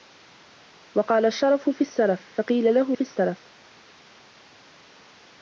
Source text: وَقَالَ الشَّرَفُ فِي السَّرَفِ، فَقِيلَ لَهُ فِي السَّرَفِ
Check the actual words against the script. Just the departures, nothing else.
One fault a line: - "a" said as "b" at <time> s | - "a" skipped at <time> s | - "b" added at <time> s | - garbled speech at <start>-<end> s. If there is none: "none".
none